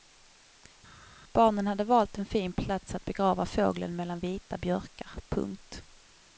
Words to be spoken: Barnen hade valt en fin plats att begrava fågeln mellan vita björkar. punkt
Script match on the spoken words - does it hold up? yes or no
yes